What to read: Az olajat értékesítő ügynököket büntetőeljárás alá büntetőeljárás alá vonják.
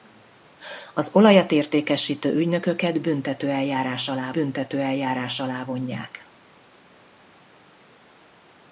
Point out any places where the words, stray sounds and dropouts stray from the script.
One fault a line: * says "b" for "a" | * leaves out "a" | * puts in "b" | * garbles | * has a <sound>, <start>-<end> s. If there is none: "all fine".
all fine